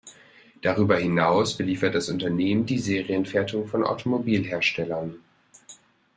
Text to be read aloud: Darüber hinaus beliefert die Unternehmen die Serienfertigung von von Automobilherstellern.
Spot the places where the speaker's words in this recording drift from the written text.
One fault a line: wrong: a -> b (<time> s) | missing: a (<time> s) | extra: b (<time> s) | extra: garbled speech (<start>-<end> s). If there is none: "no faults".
wrong: die -> das (1.9 s)
missing: von (3.8 s)